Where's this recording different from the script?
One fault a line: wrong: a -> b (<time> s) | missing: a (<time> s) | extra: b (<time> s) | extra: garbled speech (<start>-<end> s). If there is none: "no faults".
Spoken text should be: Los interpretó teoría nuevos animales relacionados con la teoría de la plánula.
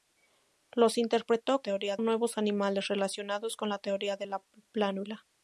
no faults